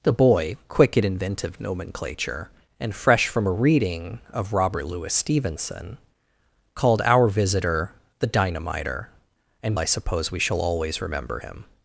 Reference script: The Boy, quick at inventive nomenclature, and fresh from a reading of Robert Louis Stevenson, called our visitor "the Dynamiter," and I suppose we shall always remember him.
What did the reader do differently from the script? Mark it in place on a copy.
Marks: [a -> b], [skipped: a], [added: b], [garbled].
The Boy, quick at inventive nomenclature, and fresh from a reading of Robert Louis Stevenson, called our visitor "the Dynamiter," and I suppose we shall always remember him.